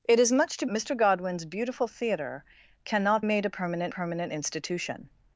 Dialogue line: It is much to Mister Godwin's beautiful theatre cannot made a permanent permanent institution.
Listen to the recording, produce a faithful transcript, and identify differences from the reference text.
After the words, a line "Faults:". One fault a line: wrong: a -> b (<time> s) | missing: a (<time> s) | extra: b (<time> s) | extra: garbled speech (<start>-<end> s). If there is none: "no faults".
It is much to Mister Godwin's beautiful theatre cannot made a permanent permanent institution.
Faults:
no faults